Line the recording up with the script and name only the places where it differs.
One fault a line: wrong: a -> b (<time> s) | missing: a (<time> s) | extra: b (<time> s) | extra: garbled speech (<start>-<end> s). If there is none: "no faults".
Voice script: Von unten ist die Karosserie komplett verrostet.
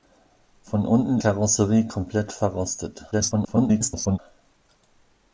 missing: ist die (1.2 s)
extra: garbled speech (3.1-4.2 s)